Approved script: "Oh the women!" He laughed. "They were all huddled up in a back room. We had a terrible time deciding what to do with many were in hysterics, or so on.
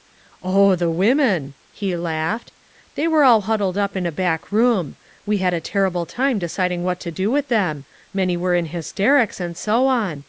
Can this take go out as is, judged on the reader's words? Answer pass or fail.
fail